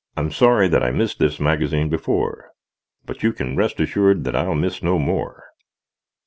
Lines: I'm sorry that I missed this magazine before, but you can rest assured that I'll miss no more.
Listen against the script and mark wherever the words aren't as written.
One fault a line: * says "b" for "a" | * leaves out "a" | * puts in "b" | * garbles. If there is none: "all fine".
all fine